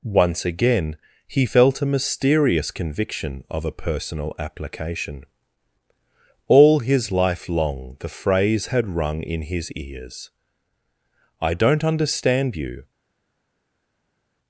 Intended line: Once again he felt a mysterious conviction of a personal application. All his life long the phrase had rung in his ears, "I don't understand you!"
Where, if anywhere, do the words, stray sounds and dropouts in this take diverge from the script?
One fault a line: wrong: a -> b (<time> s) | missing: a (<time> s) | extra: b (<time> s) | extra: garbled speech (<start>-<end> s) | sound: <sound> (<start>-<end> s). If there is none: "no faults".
no faults